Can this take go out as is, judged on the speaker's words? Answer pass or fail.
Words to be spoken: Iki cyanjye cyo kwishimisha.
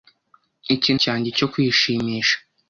pass